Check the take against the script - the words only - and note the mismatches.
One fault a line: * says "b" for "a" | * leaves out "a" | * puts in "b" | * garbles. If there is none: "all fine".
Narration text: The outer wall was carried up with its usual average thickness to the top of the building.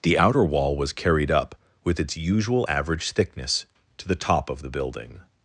all fine